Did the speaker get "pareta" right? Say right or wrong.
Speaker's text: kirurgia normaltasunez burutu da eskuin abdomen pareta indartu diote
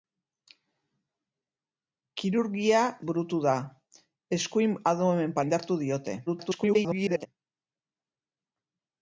wrong